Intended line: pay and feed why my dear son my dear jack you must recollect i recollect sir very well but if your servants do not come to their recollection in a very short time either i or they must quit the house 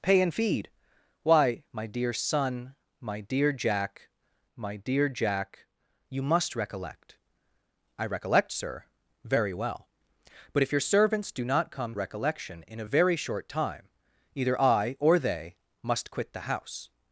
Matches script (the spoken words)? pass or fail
fail